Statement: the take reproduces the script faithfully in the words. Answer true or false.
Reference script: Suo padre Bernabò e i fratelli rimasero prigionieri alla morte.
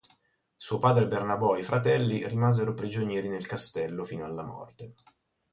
false